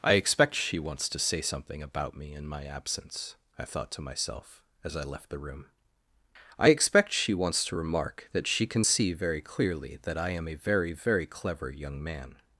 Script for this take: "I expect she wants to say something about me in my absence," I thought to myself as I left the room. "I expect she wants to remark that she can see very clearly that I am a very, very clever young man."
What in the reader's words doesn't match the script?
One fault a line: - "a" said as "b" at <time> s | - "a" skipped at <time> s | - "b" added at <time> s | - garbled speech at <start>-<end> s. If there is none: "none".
none